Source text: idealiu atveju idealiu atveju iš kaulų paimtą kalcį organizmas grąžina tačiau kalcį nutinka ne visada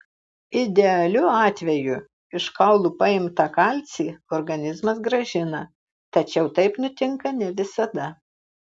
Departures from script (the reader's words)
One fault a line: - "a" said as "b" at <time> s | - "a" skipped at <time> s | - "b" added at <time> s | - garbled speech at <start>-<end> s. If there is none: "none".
- "idealiu atveju" skipped at 2.0 s
- "kalcį" said as "taip" at 6.6 s